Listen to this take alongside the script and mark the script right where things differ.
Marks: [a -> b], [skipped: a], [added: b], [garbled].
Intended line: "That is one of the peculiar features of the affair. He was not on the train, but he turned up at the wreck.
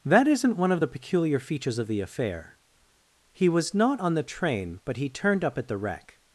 "That [is -> isn't] one of the peculiar features of the affair. He was not on the train, but he turned up at the wreck.